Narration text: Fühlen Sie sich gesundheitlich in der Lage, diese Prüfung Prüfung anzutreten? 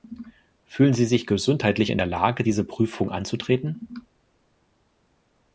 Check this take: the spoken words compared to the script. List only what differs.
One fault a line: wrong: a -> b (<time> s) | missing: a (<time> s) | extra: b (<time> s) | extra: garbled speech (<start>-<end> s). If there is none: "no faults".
missing: Prüfung (3.1 s)